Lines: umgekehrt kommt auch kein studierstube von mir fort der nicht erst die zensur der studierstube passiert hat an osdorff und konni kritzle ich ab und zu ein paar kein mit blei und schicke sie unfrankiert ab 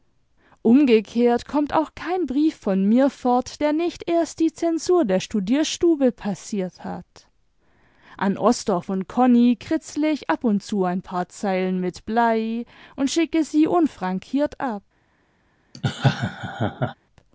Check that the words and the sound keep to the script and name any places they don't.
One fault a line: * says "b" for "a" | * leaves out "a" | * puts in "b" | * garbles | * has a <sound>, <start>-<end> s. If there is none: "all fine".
* says "brief" for "studierstube"
* says "zeilen" for "kein"
* has a laugh, 15.7-16.9 s